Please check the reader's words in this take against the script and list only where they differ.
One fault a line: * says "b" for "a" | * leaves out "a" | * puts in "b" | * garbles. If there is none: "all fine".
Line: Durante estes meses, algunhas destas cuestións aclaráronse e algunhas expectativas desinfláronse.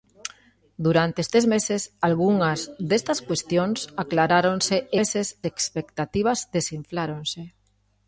* says "meses" for "algunhas"